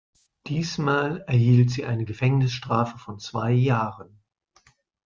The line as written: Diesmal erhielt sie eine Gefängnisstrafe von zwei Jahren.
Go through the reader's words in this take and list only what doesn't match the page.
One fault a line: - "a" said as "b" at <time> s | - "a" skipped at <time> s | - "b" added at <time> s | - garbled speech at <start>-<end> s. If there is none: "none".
none